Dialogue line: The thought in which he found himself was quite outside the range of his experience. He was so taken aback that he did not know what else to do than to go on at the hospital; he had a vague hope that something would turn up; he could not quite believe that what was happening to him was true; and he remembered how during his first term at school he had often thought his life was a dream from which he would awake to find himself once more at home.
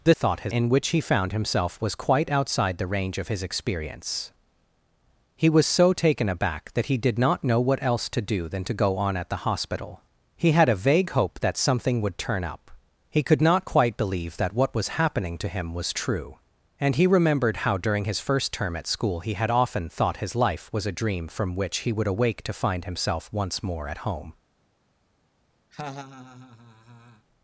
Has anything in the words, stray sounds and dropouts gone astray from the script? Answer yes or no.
yes